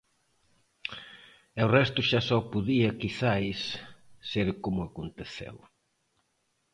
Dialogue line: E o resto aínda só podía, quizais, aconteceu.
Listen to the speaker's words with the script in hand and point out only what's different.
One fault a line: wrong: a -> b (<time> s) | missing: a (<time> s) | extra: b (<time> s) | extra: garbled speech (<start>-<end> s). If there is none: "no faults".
wrong: aínda -> xa (2.1 s)
extra: ser como (4.3 s)